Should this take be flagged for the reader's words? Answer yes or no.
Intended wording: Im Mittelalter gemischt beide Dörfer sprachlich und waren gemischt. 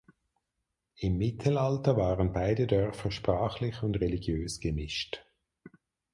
yes